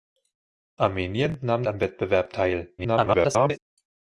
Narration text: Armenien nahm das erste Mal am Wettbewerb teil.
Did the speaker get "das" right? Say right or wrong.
wrong